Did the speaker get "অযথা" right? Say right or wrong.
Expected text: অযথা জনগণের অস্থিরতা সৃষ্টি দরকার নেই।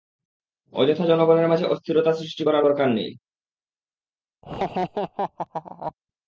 right